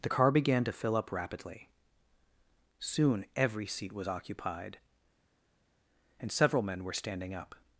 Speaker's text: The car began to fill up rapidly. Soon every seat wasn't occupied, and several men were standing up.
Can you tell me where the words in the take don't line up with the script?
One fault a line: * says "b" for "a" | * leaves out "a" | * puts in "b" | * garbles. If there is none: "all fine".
* says "was" for "wasn't"